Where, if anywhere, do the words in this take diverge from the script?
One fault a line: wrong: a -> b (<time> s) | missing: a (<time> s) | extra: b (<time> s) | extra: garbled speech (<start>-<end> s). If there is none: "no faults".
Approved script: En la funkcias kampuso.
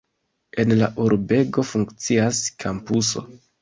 extra: urbego (1.1 s)